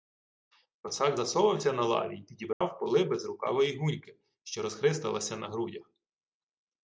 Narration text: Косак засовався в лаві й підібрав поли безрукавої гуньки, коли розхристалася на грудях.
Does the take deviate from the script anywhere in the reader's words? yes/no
yes